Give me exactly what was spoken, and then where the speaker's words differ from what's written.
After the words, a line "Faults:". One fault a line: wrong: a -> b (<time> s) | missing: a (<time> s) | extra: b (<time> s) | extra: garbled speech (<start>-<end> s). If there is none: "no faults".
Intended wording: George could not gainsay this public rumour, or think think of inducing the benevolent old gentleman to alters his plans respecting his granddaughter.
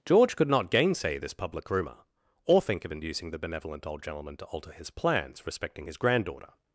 George could not gainsay this public rumour, or think of inducing the benevolent old gentleman to alter his plans respecting his granddaughter.
Faults:
missing: think (2.8 s)
wrong: alters -> alter (4.5 s)